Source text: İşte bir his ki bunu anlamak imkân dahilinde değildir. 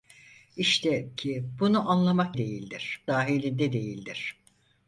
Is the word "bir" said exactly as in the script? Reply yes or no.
no